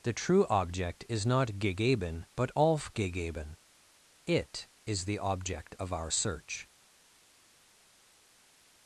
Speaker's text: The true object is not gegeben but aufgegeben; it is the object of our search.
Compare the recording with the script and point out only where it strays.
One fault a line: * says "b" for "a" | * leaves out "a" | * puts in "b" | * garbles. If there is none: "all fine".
all fine